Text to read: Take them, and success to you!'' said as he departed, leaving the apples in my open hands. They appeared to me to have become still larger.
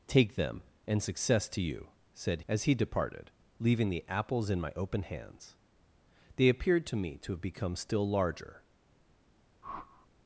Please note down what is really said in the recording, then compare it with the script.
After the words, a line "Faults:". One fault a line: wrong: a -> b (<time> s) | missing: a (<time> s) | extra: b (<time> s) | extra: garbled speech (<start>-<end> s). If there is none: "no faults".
Take them, and success to you!'' said as he departed, leaving the apples in my open hands. They appeared to me to have become still larger.
Faults:
no faults